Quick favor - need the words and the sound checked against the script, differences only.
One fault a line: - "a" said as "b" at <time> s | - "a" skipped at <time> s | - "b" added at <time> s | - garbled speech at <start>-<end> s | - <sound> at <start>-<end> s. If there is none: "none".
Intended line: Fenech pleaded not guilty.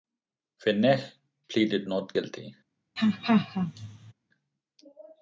- laugh at 3.0-4.1 s